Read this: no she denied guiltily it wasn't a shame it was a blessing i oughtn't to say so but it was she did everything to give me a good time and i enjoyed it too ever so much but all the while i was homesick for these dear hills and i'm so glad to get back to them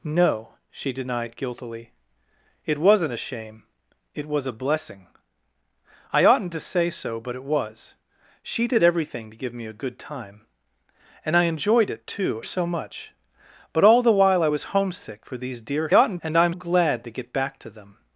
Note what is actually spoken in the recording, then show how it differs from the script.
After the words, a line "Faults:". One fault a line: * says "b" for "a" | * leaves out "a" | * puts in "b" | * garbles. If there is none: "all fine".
no she denied guiltily it wasn't a shame it was a blessing i oughtn't to say so but it was she did everything to give me a good time and i enjoyed it too so much but all the while i was homesick for these dear oughtn't and i'm glad to get back to them
Faults:
* leaves out "ever"
* says "oughtn't" for "hills"
* leaves out "so"